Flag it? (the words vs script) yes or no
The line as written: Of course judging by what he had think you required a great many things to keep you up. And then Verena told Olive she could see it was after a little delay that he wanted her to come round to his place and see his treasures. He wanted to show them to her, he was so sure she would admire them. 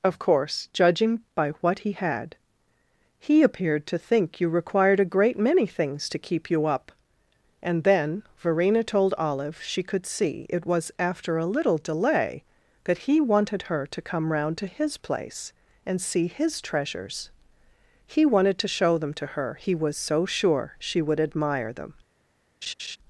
yes